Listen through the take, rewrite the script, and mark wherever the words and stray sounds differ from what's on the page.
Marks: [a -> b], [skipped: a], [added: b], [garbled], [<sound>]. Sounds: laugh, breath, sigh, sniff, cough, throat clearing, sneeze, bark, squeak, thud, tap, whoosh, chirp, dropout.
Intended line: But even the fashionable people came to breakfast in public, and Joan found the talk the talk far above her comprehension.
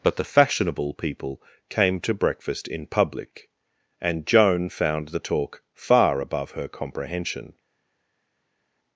But [skipped: even] the fashionable people came to breakfast in public, and Joan found the talk [skipped: the talk] far above her comprehension.